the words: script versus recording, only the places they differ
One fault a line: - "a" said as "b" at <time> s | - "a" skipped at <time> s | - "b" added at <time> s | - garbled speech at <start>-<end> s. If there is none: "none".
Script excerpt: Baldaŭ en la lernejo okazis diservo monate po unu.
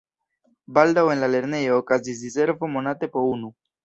none